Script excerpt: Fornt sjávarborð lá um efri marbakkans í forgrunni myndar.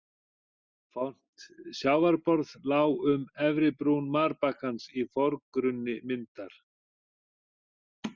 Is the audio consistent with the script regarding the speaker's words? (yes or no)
no